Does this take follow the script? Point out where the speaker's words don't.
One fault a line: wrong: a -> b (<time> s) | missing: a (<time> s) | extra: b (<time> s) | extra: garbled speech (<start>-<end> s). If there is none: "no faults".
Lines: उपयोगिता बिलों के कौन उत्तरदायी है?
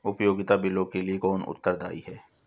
extra: लिए (1.0 s)